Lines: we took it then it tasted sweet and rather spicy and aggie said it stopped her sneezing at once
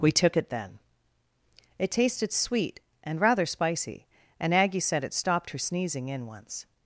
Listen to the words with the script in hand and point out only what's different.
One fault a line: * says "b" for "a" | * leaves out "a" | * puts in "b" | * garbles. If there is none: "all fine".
* says "in" for "at"